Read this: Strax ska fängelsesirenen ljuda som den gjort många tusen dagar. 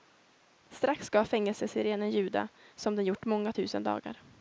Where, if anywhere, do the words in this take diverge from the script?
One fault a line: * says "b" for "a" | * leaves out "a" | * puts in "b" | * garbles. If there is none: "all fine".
all fine